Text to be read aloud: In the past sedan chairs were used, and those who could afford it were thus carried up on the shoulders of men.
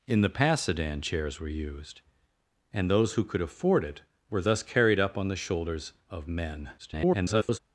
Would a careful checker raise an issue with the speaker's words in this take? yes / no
yes